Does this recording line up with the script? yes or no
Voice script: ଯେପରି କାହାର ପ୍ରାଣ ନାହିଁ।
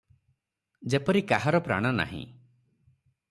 yes